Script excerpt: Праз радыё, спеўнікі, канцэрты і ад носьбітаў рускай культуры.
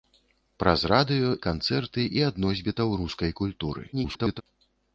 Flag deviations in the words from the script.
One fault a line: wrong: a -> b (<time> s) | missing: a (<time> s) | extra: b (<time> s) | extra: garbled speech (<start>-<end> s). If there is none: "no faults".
missing: спеўнікі (1.3 s)
extra: garbled speech (3.9-4.4 s)